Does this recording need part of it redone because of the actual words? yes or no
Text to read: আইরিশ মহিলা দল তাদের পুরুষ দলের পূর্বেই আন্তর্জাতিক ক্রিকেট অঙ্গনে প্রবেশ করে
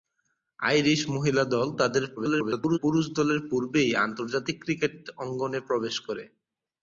yes